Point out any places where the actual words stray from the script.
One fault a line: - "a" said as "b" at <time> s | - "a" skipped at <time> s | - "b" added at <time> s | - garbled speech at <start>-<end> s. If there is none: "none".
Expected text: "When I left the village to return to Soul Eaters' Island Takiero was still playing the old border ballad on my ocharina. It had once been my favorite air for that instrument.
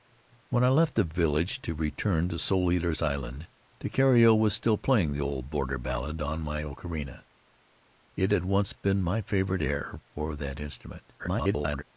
- garbled speech at 11.2-11.8 s